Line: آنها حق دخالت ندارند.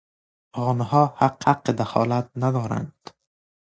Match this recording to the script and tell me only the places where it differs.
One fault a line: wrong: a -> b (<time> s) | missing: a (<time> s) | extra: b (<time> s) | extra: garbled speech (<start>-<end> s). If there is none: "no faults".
extra: حق (1.4 s)